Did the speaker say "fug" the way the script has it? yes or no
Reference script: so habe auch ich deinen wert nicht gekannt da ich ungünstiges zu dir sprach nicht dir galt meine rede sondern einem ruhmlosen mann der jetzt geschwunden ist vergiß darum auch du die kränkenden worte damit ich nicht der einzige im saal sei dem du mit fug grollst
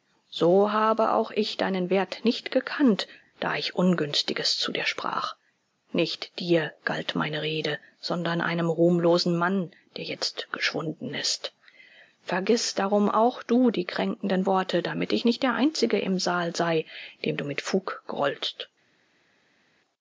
yes